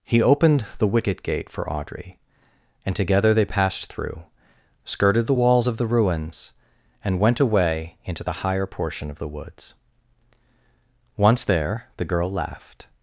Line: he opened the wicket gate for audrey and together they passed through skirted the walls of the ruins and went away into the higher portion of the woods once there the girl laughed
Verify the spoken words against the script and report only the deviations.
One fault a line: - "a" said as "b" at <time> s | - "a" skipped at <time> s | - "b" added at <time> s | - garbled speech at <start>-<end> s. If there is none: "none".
none